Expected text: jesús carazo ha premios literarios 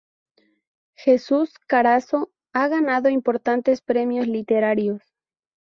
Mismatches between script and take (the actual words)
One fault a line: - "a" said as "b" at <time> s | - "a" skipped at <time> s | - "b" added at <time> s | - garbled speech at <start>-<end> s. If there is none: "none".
- "ganado importantes" added at 2.7 s